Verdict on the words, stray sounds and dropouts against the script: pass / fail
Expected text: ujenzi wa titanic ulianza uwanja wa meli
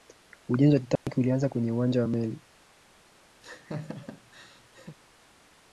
fail